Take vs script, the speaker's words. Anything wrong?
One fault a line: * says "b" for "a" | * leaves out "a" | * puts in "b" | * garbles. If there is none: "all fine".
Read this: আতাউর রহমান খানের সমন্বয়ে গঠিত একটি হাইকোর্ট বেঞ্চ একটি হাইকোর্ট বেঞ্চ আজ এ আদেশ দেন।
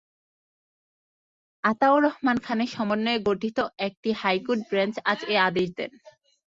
* leaves out "একটি হাইকোর্ট বেঞ্চ"